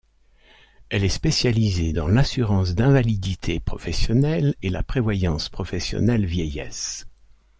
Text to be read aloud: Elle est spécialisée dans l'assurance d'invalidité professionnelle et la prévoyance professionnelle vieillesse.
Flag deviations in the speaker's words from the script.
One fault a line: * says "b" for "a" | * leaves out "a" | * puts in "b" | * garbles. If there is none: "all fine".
all fine